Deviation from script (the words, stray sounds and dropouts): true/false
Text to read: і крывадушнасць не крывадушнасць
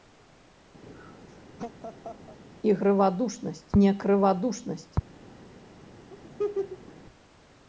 true